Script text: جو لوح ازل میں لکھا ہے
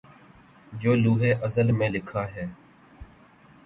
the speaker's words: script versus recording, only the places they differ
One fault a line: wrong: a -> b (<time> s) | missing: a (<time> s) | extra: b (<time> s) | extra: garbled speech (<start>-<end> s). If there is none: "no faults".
no faults